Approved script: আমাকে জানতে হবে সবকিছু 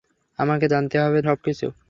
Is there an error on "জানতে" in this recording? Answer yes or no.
no